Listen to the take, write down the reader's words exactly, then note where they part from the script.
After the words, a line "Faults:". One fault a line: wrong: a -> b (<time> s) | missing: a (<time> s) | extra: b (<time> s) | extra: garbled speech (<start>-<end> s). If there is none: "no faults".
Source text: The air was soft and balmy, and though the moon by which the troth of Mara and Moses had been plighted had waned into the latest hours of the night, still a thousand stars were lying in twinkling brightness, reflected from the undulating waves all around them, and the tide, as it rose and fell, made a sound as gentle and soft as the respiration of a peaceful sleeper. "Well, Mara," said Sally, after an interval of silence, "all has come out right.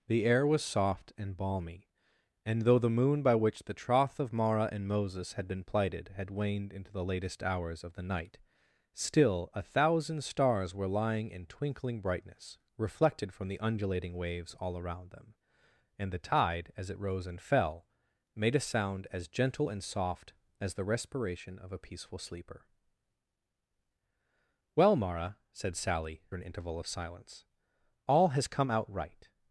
The air was soft and balmy, and though the moon by which the troth of Mara and Moses had been plighted had waned into the latest hours of the night, still a thousand stars were lying in twinkling brightness, reflected from the undulating waves all around them, and the tide, as it rose and fell, made a sound as gentle and soft as the respiration of a peaceful sleeper. "Well, Mara," said Sally, an interval of silence, "all has come out right.
Faults:
missing: after (26.2 s)